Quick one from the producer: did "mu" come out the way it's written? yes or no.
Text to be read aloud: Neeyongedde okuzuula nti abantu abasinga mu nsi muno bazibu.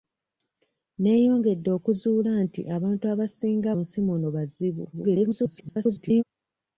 no